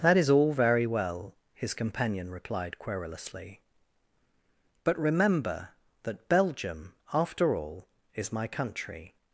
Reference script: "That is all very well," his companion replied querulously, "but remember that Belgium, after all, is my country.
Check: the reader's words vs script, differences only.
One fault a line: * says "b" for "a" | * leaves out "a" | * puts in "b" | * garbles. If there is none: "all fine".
all fine